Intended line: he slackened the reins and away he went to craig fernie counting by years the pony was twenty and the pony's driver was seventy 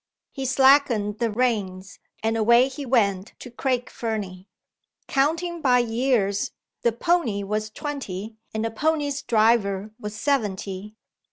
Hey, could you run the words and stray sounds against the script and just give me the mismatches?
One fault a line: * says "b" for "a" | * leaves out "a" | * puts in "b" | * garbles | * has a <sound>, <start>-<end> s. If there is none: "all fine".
all fine